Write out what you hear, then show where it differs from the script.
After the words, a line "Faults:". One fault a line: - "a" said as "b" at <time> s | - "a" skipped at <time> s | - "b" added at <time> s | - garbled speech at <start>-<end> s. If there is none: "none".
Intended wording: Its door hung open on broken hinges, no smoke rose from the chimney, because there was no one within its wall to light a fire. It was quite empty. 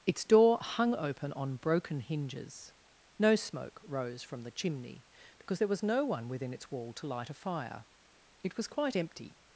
Its door hung open on broken hinges, no smoke rose from the chimney, because there was no one within its wall to light a fire. It was quite empty.
Faults:
none